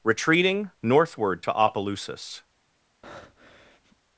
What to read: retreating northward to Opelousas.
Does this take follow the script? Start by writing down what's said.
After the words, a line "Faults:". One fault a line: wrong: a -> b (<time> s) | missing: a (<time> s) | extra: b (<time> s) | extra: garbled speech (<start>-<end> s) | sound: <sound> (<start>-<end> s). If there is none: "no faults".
retreating northward to Opelousas.
Faults:
sound: breath (3.0-4.0 s)